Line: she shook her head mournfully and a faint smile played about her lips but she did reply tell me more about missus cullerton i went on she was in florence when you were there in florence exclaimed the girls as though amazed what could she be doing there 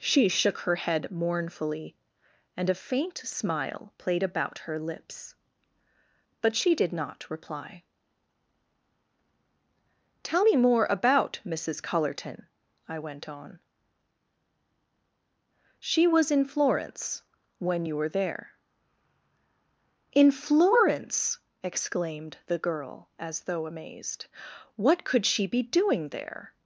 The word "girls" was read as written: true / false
false